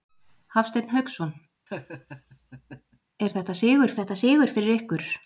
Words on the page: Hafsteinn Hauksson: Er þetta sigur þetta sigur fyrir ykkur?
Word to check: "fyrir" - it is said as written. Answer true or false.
true